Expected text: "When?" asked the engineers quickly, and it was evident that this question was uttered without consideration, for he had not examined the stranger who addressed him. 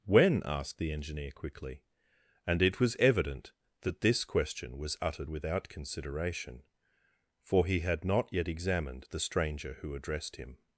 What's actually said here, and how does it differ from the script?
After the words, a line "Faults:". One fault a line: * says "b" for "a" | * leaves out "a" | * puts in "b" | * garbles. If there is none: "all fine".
"When?" asked the engineer quickly, and it was evident that this question was uttered without consideration, for he had not yet examined the stranger who addressed him.
Faults:
* says "engineer" for "engineers"
* puts in "yet"